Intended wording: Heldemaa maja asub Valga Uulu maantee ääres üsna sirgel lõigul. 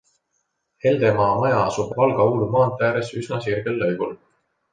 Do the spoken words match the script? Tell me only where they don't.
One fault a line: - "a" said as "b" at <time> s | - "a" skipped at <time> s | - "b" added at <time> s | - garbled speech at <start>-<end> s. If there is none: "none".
none